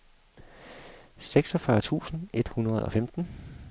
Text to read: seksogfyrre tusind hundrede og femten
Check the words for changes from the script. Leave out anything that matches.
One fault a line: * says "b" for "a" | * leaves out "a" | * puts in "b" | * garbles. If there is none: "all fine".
* puts in "et"